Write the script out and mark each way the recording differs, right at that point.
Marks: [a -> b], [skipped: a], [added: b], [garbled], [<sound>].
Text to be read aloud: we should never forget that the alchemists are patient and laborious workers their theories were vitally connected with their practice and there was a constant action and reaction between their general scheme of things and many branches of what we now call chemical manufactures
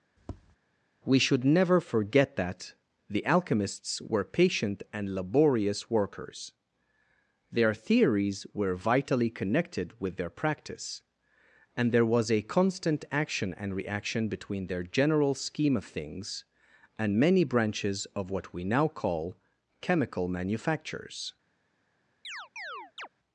[tap] we should never forget that the alchemists [are -> were] patient and laborious workers their theories were vitally connected with their practice and there was a constant action and reaction between their general scheme of things and many branches of what we now call chemical manufactures [chirp]